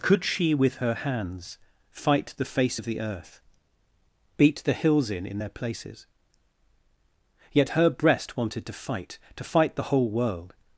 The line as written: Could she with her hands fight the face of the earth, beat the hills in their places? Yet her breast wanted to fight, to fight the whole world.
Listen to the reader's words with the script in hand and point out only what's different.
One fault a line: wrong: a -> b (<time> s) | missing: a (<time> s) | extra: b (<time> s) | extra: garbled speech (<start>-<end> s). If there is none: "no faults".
extra: in (5.2 s)